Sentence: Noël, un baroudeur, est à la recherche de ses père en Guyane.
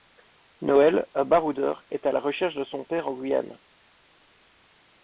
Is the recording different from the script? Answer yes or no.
yes